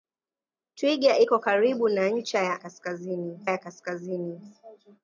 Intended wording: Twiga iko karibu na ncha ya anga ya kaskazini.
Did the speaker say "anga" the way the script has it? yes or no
no